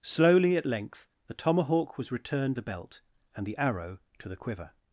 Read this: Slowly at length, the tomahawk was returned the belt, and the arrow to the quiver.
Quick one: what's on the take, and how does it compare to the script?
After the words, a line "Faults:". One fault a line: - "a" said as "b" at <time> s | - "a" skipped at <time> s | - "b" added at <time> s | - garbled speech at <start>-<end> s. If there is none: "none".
Slowly at length, the tomahawk was returned the belt, and the arrow to the quiver.
Faults:
none